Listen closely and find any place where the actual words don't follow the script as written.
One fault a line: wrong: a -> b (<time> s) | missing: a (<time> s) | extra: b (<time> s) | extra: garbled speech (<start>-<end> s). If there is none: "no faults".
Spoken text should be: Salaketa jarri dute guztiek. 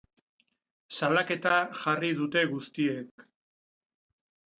no faults